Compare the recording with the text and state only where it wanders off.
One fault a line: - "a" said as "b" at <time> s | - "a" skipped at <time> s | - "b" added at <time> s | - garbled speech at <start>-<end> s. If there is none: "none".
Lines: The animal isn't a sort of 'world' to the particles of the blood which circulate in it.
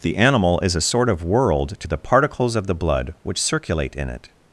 - "isn't" said as "is" at 0.6 s